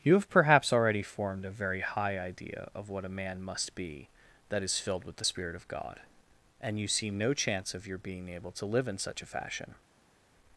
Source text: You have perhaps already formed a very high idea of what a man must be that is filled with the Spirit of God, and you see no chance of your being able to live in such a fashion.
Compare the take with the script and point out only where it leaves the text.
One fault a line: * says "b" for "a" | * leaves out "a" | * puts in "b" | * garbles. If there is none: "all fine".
all fine